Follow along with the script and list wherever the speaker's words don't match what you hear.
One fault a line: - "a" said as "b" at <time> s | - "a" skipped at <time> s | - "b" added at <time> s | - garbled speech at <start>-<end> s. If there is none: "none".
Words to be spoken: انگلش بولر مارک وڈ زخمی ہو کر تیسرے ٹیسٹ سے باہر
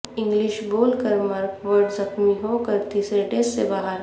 none